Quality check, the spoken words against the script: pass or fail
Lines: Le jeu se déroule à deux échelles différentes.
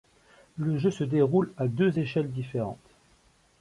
pass